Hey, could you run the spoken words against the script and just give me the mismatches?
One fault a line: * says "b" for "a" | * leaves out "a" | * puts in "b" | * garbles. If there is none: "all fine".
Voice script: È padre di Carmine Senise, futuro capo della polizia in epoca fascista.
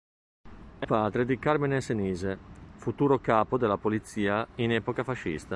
all fine